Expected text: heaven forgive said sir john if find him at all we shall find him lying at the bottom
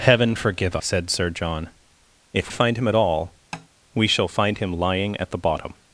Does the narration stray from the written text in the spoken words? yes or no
no